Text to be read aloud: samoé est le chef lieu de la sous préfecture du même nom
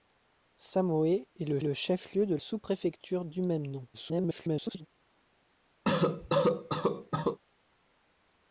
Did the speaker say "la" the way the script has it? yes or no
no